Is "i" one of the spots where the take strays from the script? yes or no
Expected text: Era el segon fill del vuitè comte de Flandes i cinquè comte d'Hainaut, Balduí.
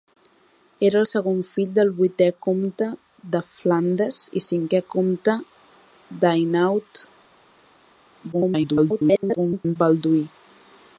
no